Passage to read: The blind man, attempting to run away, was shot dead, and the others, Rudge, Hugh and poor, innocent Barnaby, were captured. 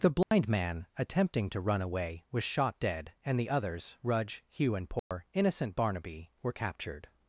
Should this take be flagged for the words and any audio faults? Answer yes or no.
yes